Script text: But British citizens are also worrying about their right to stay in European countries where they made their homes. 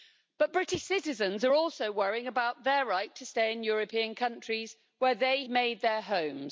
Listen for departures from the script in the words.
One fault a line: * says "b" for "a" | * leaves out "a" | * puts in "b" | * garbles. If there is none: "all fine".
all fine